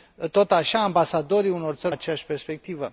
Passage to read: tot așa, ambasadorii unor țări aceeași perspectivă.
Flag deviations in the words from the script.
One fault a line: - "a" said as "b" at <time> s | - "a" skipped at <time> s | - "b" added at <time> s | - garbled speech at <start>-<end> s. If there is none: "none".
none